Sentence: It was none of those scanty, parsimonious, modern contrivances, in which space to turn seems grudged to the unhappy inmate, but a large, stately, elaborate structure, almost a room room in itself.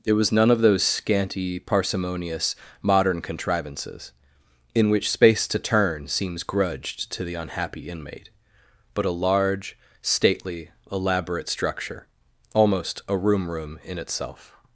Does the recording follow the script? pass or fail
pass